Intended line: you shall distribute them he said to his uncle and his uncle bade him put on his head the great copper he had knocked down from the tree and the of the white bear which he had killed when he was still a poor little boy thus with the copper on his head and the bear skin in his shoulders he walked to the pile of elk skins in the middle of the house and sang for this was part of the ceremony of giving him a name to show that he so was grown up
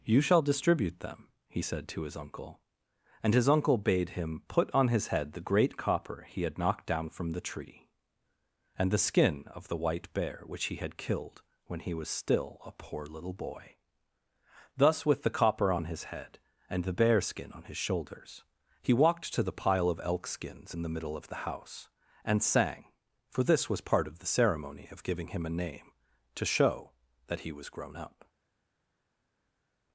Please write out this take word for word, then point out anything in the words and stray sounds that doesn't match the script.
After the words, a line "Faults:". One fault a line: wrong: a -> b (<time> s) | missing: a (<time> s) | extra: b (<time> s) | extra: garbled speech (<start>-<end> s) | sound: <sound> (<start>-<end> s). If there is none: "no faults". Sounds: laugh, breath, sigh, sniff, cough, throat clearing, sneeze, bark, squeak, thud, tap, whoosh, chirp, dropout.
you shall distribute them he said to his uncle and his uncle bade him put on his head the great copper he had knocked down from the tree and the skin of the white bear which he had killed when he was still a poor little boy thus with the copper on his head and the bear skin on his shoulders he walked to the pile of elk skins in the middle of the house and sang for this was part of the ceremony of giving him a name to show that he was grown up
Faults:
extra: skin (9.0 s)
wrong: in -> on (17.5 s)
missing: so (27.5 s)